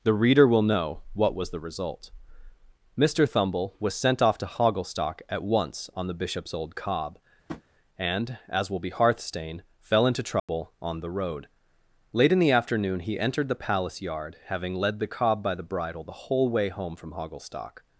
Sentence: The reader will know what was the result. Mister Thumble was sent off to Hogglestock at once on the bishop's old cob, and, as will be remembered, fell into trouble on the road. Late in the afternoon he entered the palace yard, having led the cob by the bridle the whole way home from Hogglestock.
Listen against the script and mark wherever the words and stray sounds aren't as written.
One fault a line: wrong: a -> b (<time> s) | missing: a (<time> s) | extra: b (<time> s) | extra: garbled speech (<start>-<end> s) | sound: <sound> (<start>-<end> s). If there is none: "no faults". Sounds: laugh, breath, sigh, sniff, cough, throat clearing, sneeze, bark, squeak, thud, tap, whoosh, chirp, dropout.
sound: tap (7.5-7.6 s)
wrong: remembered -> hearthstane (8.9 s)
sound: dropout (10.4-10.5 s)